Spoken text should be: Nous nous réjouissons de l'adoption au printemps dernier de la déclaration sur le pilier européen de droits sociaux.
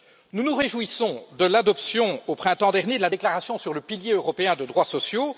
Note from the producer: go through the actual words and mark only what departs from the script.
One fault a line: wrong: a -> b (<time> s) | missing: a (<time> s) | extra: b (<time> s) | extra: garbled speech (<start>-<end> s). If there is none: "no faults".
no faults